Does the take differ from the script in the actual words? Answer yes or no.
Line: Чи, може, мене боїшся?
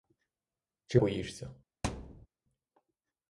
yes